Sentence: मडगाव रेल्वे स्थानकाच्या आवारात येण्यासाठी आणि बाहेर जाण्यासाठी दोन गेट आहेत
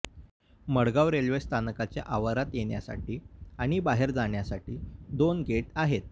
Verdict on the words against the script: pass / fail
pass